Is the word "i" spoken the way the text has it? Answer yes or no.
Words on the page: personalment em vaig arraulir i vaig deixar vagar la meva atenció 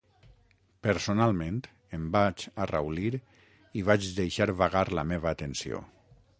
yes